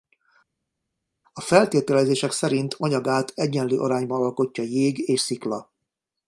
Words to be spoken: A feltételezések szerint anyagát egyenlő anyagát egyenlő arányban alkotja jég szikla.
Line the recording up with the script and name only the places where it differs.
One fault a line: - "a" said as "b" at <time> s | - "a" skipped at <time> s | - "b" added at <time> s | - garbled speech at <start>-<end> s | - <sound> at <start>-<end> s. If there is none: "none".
- "anyagát egyenlő" skipped at 3.8 s
- "és" added at 5.1 s